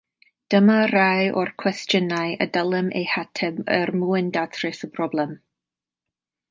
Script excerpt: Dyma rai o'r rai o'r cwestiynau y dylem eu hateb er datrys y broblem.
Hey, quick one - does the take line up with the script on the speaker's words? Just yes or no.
no